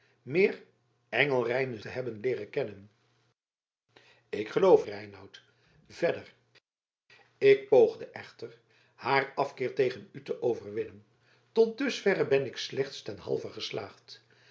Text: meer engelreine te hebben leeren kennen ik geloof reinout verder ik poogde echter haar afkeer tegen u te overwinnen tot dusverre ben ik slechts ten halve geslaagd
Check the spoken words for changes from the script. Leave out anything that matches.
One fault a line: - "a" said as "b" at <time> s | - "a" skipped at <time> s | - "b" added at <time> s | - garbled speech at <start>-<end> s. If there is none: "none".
none